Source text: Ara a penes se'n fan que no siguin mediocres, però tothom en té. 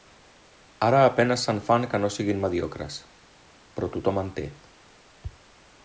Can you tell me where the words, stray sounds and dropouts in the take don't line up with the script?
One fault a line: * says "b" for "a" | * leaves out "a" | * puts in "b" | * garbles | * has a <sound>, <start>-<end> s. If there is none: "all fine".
all fine